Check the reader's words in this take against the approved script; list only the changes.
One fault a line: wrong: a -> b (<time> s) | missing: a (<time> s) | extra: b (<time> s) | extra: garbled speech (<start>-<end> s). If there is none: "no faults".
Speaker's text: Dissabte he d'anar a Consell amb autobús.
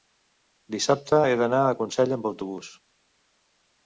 no faults